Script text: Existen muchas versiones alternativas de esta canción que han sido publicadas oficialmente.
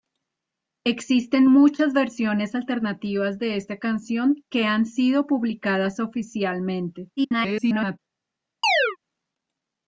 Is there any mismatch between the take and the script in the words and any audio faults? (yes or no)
yes